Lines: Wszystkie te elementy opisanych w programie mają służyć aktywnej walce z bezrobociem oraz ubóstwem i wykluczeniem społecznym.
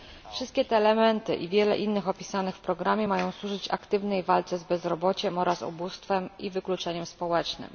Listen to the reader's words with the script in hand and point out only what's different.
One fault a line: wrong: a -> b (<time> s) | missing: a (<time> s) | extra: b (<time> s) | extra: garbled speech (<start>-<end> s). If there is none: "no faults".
extra: i wiele innych (1.4 s)